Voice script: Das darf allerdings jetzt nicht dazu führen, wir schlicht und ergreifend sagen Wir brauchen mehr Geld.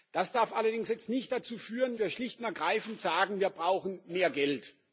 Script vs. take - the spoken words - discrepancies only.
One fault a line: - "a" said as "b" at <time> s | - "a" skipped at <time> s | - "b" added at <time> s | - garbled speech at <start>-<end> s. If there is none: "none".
none